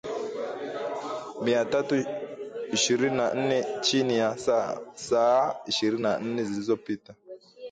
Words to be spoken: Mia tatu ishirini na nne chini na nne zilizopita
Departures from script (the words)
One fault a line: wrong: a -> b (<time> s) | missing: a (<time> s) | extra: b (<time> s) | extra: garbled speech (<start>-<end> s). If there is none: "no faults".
extra: ya saa ishirini (4.2 s)